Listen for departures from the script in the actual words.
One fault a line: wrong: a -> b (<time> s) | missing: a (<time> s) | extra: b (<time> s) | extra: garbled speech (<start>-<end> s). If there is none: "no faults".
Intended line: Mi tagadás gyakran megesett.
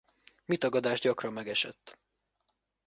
no faults